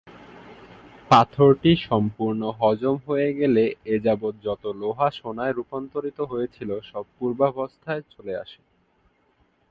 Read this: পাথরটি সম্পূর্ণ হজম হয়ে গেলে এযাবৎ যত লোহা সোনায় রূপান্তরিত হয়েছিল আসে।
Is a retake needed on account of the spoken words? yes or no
yes